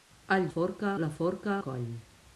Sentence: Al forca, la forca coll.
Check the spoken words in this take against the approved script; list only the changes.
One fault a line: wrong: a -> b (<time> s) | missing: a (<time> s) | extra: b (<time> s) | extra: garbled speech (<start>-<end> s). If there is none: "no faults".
no faults